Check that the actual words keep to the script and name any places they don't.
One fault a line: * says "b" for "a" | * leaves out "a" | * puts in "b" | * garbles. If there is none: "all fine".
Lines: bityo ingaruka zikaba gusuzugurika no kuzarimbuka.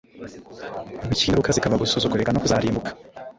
all fine